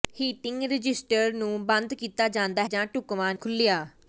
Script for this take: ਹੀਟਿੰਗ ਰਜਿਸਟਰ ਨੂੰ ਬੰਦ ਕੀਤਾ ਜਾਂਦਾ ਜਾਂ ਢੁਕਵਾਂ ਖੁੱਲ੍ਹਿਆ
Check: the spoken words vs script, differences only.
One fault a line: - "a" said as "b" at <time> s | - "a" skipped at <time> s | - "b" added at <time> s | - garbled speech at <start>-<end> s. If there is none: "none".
none